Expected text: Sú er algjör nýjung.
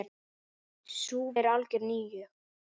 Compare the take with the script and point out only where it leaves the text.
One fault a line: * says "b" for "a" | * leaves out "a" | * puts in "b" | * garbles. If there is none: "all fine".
all fine